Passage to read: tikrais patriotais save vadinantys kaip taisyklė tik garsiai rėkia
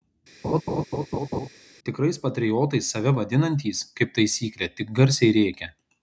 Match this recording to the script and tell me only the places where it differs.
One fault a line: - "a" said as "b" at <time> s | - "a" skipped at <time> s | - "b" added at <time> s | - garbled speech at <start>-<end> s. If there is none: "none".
none